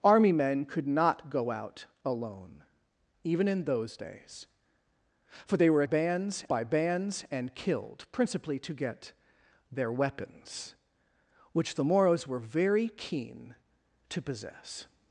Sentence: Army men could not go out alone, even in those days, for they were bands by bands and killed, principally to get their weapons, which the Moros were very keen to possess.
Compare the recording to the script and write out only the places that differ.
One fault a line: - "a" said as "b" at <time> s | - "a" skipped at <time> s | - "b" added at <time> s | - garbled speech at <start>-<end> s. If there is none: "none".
none